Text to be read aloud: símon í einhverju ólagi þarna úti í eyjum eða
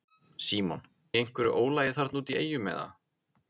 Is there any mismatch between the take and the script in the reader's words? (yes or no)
no